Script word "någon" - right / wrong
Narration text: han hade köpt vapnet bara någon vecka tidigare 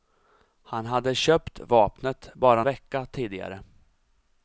wrong